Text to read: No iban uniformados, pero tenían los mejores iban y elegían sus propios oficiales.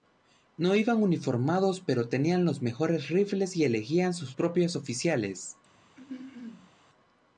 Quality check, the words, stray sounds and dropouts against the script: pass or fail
fail